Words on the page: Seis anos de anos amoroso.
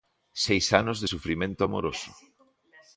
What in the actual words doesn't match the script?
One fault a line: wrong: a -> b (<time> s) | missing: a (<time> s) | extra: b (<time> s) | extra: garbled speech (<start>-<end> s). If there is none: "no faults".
wrong: anos -> sufrimento (1.0 s)